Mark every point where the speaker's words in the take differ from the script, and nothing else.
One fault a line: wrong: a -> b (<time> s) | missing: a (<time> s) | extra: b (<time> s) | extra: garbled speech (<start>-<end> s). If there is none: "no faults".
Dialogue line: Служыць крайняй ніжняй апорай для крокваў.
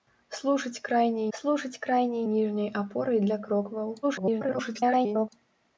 extra: служыць крайняй (1.4 s)
extra: garbled speech (4.0-5.3 s)